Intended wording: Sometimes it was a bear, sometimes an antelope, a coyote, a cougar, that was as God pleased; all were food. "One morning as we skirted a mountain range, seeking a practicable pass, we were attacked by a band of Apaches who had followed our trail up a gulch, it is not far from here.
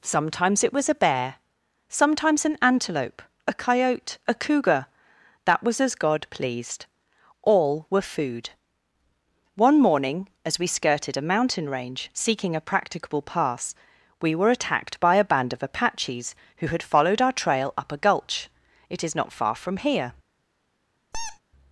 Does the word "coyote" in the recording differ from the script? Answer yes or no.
no